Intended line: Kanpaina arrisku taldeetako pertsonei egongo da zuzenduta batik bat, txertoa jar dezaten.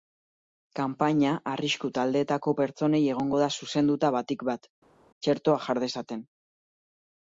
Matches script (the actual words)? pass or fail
pass